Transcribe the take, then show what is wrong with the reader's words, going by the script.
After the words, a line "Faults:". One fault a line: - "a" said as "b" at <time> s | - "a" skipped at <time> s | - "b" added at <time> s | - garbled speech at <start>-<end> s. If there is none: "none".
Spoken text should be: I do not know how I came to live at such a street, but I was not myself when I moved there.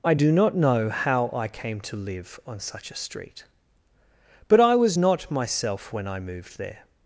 I do not know how I came to live on such a street, but I was not myself when I moved there.
Faults:
- "at" said as "on" at 2.5 s